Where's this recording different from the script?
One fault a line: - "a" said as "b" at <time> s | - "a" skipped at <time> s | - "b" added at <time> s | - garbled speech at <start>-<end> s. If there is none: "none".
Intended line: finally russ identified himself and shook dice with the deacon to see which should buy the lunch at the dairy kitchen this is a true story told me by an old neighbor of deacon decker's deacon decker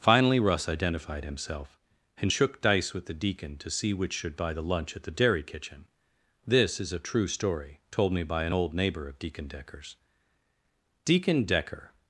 none